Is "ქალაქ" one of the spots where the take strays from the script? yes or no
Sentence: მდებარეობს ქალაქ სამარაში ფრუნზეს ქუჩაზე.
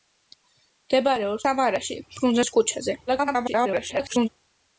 yes